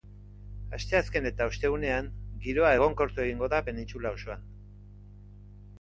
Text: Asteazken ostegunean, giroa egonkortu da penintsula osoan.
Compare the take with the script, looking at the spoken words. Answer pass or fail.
fail